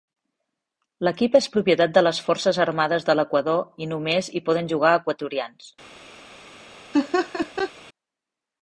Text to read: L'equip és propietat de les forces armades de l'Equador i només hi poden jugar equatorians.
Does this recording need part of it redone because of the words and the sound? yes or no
yes